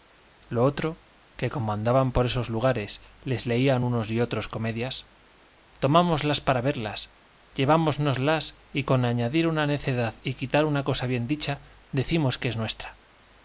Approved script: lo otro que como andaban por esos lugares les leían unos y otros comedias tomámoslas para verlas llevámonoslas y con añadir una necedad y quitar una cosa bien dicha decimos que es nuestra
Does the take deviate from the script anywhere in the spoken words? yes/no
no